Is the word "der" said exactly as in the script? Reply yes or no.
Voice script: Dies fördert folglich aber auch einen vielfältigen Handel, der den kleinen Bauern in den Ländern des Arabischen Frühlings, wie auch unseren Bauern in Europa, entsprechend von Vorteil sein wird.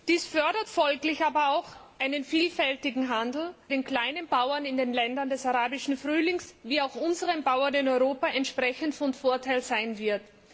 no